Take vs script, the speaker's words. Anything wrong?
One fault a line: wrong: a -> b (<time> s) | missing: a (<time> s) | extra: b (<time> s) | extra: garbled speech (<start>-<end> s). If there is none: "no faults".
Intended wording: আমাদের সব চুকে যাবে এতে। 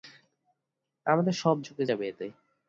no faults